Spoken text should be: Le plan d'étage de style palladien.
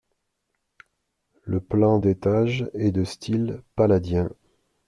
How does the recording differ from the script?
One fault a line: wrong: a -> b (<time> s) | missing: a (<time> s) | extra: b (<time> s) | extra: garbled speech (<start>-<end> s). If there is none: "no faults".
extra: est (2.7 s)